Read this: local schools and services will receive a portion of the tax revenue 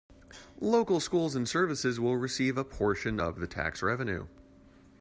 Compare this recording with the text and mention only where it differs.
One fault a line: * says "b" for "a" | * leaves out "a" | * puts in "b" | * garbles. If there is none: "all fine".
all fine